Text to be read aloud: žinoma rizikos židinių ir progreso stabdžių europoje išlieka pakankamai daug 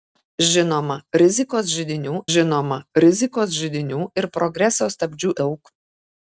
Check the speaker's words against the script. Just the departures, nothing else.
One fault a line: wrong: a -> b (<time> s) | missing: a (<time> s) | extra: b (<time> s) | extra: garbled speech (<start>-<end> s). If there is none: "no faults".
extra: žinoma rizikos židinių (2.3 s)
missing: europoje išlieka pakankamai (5.3 s)